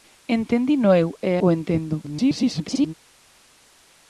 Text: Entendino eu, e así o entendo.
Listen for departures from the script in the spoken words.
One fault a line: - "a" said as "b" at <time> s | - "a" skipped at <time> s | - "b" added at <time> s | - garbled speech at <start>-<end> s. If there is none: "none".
- "así" skipped at 1.3 s
- garbled speech at 2.0-2.9 s